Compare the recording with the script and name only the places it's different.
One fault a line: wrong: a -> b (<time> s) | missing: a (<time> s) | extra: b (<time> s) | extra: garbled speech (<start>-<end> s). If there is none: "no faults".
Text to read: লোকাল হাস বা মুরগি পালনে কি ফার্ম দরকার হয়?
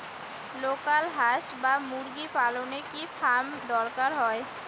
no faults